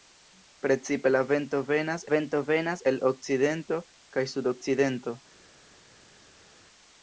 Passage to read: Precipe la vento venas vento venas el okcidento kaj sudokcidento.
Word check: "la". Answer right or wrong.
right